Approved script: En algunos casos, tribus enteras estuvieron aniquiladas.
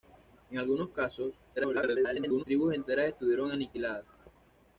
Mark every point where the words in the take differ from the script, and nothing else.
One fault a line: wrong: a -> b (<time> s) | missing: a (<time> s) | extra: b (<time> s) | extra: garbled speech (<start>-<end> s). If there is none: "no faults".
extra: garbled speech (1.6-2.4 s)